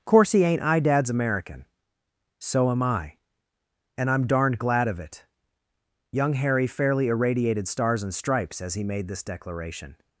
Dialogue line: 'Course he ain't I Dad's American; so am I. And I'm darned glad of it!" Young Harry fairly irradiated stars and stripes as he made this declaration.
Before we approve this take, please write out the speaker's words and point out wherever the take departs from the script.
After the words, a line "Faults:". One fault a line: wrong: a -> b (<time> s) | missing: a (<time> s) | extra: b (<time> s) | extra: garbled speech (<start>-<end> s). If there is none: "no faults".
'Course he ain't I Dad's American; so am I. And I'm darned glad of it!" Young Harry fairly irradiated stars and stripes as he made this declaration.
Faults:
no faults